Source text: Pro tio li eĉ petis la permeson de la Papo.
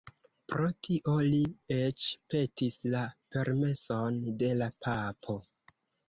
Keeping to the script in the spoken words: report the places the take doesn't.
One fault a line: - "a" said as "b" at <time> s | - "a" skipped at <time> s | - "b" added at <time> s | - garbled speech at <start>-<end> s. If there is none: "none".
none